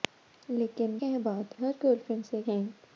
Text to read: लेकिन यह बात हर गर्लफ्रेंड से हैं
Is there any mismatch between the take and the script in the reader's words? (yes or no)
no